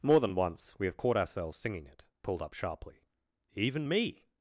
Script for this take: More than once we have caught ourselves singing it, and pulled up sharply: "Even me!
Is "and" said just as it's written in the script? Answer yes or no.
no